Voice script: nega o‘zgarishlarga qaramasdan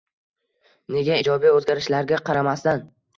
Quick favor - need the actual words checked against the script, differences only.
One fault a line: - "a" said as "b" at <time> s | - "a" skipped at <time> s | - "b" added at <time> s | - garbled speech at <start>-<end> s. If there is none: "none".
- "ijobiy" added at 1.2 s